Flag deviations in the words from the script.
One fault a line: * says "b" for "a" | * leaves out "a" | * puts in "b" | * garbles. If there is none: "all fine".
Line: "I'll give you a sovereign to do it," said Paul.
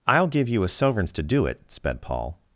* says "sovereigns" for "sovereign"
* says "sped" for "said"